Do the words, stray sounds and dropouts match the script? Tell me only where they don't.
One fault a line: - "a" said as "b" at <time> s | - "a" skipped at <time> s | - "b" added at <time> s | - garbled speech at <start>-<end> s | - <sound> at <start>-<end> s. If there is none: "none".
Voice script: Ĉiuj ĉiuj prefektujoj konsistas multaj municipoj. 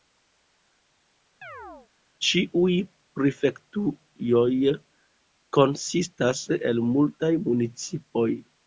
- chirp at 1.4-1.9 s
- "ĉiuj" skipped at 2.8 s
- "el" added at 6.6 s